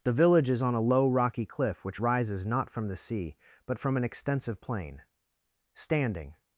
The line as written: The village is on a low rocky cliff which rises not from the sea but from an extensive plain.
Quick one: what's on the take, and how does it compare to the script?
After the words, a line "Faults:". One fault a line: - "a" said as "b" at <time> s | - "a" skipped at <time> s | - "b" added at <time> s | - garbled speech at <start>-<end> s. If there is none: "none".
The village is on a low rocky cliff which rises not from the sea but from an extensive plain. Standing
Faults:
- "Standing" added at 5.7 s